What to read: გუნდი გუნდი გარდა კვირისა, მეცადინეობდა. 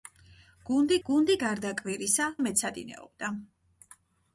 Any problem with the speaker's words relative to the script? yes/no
no